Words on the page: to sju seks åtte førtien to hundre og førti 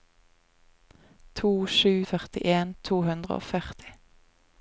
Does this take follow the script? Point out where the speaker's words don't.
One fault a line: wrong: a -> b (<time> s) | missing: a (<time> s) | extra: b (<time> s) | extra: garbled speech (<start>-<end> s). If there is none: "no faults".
missing: seks åtte (1.9 s)